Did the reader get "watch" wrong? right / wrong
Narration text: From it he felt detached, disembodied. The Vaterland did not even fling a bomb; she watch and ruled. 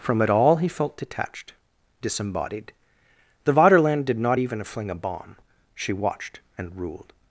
wrong